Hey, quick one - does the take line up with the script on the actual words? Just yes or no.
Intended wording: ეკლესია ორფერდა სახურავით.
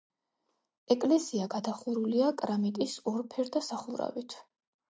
no